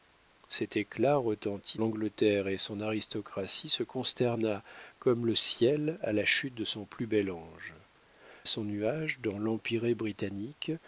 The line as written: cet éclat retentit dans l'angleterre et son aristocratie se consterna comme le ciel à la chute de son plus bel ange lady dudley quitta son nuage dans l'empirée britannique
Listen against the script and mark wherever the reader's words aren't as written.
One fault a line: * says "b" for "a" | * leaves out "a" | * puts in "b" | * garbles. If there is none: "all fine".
* leaves out "dans"
* leaves out "lady dudley quitta"